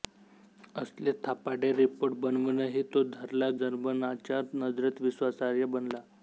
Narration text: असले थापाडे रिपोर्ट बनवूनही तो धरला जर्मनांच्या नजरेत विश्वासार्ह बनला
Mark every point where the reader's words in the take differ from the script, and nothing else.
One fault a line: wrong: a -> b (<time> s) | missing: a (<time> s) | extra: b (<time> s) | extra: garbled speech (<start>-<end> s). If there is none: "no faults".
no faults